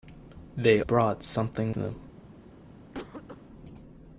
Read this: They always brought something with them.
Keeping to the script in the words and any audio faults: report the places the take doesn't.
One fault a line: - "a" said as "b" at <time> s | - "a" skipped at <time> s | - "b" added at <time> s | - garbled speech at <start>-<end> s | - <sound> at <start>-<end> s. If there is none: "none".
- "always" skipped at 0.8 s
- "with" skipped at 1.8 s
- cough at 2.9-3.4 s